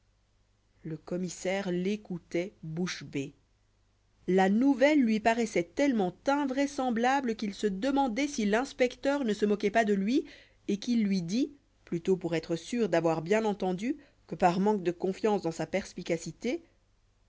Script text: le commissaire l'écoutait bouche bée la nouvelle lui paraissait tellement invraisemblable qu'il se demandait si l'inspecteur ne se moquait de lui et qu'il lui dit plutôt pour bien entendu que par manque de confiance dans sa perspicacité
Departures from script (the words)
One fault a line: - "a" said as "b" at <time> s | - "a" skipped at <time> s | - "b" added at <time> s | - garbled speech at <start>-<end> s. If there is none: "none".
- "pas" added at 9.7 s
- "être sûr d'avoir" added at 12.3 s